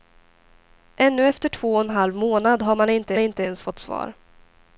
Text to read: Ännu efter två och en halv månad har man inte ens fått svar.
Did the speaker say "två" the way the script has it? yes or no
yes